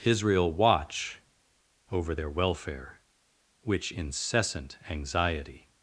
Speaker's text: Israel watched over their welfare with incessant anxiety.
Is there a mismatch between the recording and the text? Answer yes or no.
yes